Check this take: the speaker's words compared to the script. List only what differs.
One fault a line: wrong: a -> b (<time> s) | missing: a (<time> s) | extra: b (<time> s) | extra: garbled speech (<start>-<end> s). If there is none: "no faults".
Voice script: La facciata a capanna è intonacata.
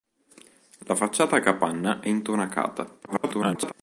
extra: garbled speech (3.1-3.7 s)